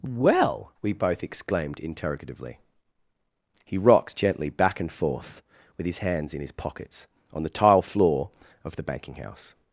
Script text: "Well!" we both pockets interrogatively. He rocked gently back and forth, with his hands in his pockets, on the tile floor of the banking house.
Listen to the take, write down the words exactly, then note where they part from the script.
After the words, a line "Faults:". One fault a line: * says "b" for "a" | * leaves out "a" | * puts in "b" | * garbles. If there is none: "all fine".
"Well!" we both exclaimed interrogatively. He rocked gently back and forth, with his hands in his pockets, on the tile floor of the banking house.
Faults:
* says "exclaimed" for "pockets"